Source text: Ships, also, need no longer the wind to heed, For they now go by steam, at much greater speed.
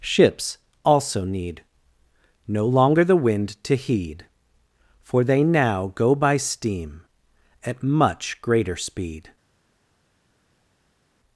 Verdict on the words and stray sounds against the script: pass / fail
pass